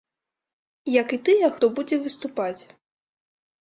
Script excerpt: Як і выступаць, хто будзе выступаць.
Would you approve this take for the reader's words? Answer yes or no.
no